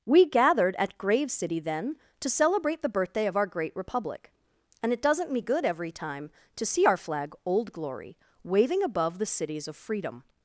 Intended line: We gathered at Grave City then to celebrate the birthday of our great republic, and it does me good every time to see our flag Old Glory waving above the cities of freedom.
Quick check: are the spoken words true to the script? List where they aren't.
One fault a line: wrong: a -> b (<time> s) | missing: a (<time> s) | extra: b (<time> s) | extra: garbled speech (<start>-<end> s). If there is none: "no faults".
wrong: does -> doesn't (5.0 s)